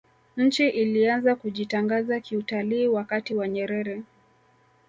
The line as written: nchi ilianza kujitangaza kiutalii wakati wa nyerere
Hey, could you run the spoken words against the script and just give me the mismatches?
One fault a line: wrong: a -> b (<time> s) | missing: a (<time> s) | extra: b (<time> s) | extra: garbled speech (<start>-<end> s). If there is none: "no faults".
no faults